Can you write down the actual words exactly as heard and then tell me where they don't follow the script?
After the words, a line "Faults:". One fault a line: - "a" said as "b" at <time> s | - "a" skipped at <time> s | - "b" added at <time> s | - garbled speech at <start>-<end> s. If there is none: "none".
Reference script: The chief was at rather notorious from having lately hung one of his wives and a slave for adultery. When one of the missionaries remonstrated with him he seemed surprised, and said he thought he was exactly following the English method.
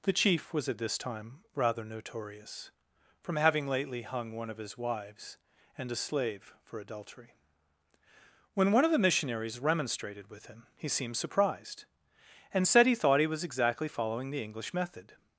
The chief was at this time rather notorious from having lately hung one of his wives and a slave for adultery. When one of the missionaries remonstrated with him he seemed surprised, and said he thought he was exactly following the English method.
Faults:
- "this time" added at 0.8 s